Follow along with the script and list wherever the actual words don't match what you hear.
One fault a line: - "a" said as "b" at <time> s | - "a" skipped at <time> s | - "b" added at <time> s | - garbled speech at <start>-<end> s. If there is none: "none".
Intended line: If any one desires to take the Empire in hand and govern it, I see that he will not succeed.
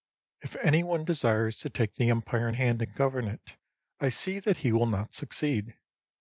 none